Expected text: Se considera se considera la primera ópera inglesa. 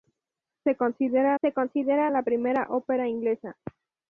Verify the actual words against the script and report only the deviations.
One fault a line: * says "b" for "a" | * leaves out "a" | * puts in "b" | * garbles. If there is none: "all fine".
all fine